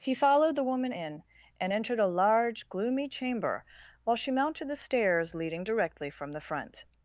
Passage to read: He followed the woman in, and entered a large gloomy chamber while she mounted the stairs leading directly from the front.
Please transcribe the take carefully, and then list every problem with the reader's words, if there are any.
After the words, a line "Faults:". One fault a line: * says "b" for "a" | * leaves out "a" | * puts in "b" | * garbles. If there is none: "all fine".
He followed the woman in, and entered a large gloomy chamber while she mounted the stairs leading directly from the front.
Faults:
all fine